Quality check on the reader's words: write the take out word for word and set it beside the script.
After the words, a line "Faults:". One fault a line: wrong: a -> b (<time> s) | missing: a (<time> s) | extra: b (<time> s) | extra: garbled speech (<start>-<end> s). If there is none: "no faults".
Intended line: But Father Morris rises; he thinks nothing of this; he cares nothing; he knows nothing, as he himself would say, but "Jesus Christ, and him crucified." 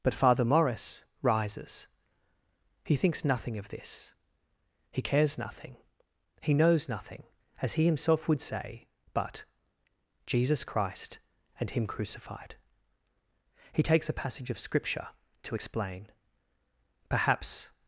But Father Morris rises; he thinks nothing of this; he cares nothing; he knows nothing, as he himself would say, but "Jesus Christ, and him crucified." He takes a passage of Scripture to explain; perhaps
Faults:
extra: He takes a passage of Scripture to explain perhaps (13.7 s)